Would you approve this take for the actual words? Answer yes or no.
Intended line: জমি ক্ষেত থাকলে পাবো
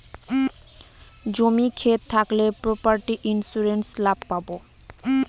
no